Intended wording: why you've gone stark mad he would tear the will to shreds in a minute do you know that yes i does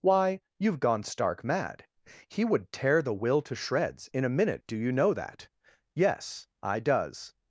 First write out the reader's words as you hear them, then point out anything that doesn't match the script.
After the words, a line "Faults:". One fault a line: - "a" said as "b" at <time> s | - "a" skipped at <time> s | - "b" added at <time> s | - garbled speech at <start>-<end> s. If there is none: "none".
why you've gone stark mad he would tear the will to shreds in a minute do you know that yes i does
Faults:
none